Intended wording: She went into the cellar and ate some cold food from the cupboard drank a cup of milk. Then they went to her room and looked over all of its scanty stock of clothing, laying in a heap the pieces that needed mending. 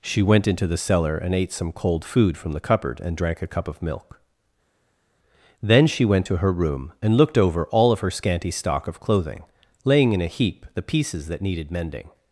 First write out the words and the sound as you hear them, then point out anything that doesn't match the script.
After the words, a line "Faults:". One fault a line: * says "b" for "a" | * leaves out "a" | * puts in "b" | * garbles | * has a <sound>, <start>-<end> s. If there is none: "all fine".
She went into the cellar and ate some cold food from the cupboard and drank a cup of milk. Then she went to her room and looked over all of her scanty stock of clothing, laying in a heap the pieces that needed mending.
Faults:
* puts in "and"
* says "she" for "they"
* says "her" for "its"